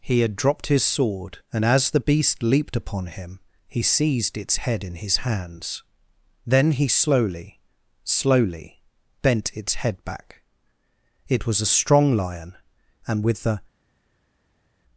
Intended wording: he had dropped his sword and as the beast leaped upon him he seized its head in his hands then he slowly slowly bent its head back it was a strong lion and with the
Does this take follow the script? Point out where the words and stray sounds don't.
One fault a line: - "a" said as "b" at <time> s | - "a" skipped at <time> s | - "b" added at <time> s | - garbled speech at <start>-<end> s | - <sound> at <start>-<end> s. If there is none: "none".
none